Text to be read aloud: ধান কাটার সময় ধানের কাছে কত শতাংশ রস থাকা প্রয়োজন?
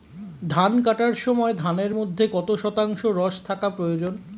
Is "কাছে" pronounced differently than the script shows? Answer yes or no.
yes